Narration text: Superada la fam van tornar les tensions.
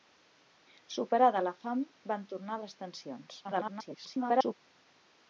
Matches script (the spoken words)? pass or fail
fail